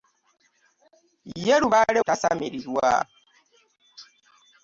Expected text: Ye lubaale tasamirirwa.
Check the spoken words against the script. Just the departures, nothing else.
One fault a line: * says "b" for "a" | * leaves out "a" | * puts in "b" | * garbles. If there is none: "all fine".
all fine